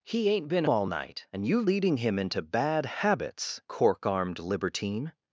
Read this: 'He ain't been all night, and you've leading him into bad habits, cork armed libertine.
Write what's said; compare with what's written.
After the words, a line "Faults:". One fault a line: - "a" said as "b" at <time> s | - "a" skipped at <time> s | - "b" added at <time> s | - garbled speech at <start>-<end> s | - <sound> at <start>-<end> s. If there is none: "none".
'He ain't been all night, and you've leading him into bad habits, cork armed libertine.
Faults:
none